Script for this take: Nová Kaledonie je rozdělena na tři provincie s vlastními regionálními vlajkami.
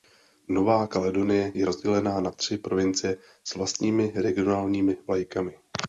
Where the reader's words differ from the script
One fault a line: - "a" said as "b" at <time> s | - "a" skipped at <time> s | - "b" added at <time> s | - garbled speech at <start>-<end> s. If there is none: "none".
none